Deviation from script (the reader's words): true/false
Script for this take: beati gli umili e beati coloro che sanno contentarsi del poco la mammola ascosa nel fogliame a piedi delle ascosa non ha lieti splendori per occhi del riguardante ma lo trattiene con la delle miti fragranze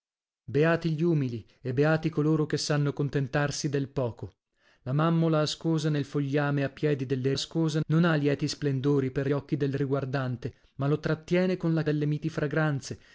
false